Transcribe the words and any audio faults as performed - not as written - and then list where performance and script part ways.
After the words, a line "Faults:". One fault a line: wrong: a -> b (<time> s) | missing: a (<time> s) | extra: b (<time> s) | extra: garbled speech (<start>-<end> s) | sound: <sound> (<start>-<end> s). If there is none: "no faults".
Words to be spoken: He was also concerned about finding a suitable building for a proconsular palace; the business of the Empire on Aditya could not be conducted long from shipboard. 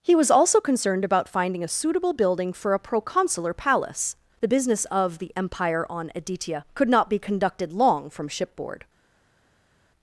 He was also concerned about finding a suitable building for a proconsular palace; the business of the Empire on Aditya could not be conducted long from shipboard.
Faults:
no faults